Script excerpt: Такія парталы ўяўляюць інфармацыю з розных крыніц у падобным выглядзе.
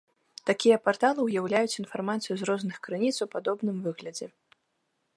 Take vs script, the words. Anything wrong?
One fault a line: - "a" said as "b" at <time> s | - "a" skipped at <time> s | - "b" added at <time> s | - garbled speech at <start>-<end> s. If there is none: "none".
none